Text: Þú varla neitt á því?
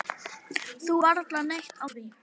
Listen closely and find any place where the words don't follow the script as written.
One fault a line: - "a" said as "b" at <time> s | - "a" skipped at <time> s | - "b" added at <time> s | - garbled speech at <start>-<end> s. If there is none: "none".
none